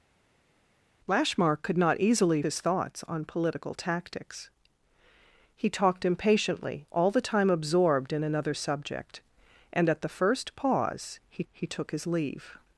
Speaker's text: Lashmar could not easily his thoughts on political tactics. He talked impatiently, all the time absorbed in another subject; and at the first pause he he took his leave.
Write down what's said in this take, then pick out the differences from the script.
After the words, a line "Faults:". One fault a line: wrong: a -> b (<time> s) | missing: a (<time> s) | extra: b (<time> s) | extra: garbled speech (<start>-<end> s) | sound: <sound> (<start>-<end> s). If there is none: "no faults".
Lashmar could not easily his thoughts on political tactics. He talked impatiently, all the time absorbed in another subject; and at the first pause he he took his leave.
Faults:
no faults